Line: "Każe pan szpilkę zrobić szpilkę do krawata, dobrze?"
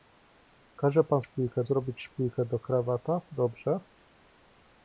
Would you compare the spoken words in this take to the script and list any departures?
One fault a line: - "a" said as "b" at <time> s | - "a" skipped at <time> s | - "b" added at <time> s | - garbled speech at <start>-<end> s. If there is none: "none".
none